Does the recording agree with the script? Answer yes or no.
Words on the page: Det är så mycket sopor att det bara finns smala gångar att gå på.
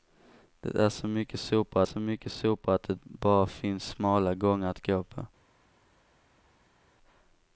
no